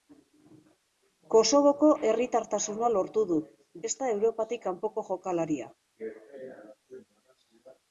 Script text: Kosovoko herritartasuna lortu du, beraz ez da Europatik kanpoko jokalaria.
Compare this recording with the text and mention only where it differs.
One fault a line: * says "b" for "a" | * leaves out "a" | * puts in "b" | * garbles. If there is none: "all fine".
* leaves out "beraz"